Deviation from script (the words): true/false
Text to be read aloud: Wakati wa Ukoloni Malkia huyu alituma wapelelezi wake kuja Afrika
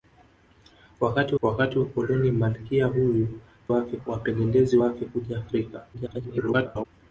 true